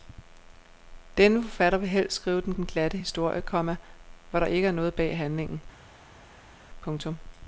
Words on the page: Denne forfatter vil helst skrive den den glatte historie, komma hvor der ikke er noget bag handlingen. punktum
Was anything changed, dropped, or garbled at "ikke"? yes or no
no